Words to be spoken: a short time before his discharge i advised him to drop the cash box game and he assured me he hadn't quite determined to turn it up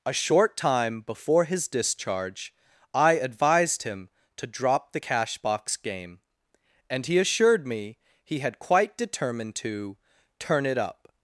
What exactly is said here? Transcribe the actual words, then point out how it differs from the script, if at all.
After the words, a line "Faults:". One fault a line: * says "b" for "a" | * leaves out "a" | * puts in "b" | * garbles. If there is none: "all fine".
a short time before his discharge i advised him to drop the cash box game and he assured me he had quite determined to turn it up
Faults:
* says "had" for "hadn't"